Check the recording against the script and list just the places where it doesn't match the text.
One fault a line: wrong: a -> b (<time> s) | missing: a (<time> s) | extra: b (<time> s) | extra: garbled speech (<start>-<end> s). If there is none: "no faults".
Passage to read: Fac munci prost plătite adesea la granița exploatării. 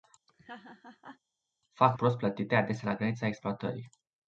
missing: munci (2.0 s)